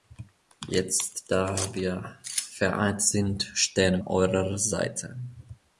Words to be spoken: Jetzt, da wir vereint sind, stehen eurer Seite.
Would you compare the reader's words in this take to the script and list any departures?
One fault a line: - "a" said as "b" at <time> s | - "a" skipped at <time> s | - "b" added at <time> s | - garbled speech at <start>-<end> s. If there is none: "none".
none